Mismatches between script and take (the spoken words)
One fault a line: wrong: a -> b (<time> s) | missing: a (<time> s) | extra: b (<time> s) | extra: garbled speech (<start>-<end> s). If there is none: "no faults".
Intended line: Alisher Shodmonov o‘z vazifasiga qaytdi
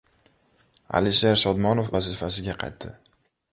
missing: o‘z (1.9 s)